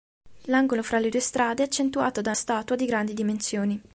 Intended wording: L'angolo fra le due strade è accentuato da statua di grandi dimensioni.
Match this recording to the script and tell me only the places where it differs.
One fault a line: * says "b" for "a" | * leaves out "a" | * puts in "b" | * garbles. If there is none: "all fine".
all fine